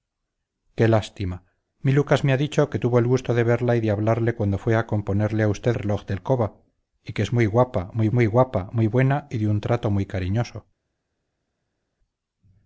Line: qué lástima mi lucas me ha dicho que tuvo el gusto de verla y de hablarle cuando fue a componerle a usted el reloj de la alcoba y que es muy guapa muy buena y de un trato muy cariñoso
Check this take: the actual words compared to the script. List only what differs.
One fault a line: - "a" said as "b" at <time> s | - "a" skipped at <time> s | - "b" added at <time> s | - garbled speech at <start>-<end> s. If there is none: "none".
- "el" skipped at 5.8 s
- "la" skipped at 6.2 s
- "muy guapa muy" added at 8.1 s